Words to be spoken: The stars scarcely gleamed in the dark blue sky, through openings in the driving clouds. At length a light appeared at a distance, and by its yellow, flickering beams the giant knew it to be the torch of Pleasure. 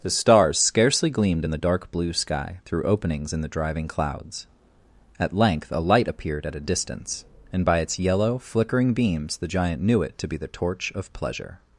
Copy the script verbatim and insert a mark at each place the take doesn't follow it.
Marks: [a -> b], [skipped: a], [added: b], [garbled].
The stars scarcely gleamed in the dark blue sky, through openings in the driving clouds. At length a light appeared at a distance, and by its yellow, flickering beams the giant knew it to be the torch of Pleasure.